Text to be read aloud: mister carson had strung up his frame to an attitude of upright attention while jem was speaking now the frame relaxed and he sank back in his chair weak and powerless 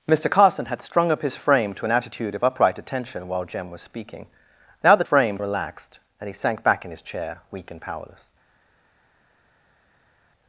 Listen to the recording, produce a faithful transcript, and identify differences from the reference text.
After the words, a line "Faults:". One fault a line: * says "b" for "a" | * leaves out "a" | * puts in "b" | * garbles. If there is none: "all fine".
mister carson had strung up his frame to an attitude of upright attention while jem was speaking now the frame relaxed and he sank back in his chair weak and powerless
Faults:
all fine